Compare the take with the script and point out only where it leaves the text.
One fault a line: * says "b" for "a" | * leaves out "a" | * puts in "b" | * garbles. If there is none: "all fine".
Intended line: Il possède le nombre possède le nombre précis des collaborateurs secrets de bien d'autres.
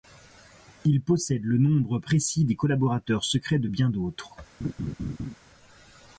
* leaves out "possède le nombre"